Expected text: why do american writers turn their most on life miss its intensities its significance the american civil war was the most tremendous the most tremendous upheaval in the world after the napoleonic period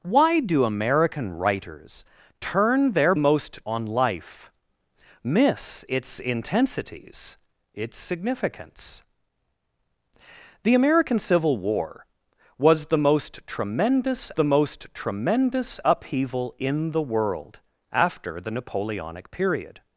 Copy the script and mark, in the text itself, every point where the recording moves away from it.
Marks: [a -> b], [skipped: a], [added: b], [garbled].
why do american writers turn their most on life miss its intensities its significance the american civil war was the most tremendous the most tremendous upheaval in the world after the napoleonic period